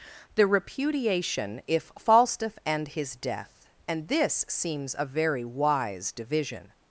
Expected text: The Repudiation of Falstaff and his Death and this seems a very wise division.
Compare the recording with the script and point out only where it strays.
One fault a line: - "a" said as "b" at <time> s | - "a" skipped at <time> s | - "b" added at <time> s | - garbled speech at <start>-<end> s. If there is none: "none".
- "of" said as "if" at 1.7 s